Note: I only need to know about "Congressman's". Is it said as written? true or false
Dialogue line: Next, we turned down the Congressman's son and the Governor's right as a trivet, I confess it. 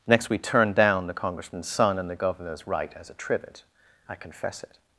true